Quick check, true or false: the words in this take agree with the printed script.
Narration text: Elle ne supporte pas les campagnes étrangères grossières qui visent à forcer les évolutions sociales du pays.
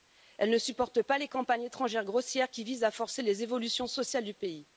true